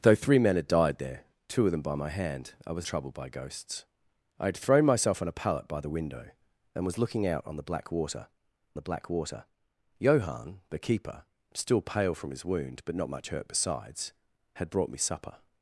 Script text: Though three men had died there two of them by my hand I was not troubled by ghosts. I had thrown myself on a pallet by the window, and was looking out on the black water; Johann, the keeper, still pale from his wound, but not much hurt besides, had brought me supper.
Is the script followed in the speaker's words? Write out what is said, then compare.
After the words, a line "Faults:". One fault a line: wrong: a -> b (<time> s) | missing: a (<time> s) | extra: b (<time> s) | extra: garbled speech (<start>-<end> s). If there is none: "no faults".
Though three men had died there two of them by my hand I was troubled by ghosts. I had thrown myself on a pallet by the window, and was looking out on the black water the black water; Johann, the keeper, still pale from his wound, but not much hurt besides, had brought me supper.
Faults:
missing: not (2.9 s)
extra: the black water (8.8 s)